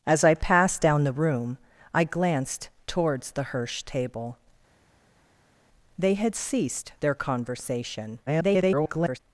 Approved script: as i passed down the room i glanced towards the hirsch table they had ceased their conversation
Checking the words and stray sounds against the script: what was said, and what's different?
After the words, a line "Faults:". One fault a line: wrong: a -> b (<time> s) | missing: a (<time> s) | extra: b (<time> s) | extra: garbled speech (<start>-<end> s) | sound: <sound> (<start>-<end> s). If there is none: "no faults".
as i passed down the room i glanced towards the hirsch table they had ceased their conversation [garbled]
Faults:
extra: garbled speech (8.3-9.2 s)